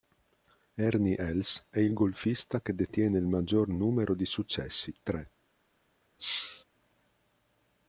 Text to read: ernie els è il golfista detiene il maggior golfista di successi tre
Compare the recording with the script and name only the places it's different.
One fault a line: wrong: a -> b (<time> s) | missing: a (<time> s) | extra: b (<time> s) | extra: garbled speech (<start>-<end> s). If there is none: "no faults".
extra: che (2.6 s)
wrong: golfista -> numero (3.7 s)